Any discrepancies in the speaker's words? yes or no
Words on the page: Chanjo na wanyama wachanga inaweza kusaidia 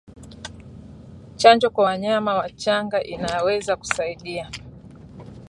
yes